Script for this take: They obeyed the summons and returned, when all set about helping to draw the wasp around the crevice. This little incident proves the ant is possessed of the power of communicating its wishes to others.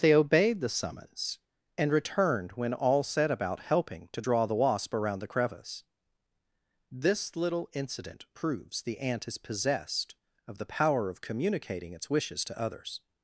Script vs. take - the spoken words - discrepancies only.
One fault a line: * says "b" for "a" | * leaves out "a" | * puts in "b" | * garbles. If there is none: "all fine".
all fine